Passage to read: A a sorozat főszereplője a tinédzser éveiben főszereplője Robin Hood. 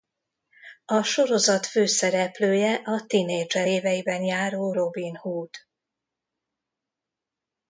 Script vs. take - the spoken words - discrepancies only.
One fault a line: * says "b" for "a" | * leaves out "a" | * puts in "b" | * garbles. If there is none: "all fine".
* leaves out "a"
* says "járó" for "főszereplője"